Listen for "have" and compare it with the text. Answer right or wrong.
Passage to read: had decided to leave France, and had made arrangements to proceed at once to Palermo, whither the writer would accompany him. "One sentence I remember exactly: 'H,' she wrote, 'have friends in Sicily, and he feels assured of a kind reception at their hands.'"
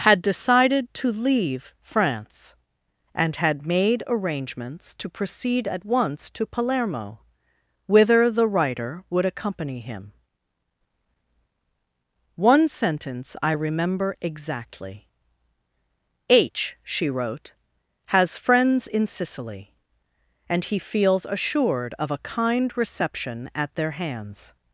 wrong